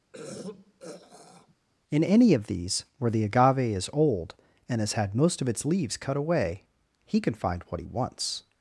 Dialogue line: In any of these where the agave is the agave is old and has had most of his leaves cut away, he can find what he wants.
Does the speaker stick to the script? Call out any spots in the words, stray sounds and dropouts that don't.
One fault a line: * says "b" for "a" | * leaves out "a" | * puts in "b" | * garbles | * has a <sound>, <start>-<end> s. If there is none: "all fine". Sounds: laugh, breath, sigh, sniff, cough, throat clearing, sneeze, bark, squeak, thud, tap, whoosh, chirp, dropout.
* has a throat clearing, 0.1-1.6 s
* leaves out "the agave is"
* says "its" for "his"